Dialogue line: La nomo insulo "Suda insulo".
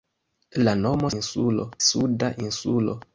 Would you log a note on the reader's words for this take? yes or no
no